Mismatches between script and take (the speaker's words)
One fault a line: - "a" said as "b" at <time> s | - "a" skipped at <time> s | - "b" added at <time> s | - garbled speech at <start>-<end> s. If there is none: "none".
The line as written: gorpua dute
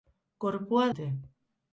none